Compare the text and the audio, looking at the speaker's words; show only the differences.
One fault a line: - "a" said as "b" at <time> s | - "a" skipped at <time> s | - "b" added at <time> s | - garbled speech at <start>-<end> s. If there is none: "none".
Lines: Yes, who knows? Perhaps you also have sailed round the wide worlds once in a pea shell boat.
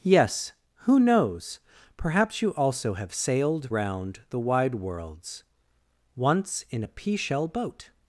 none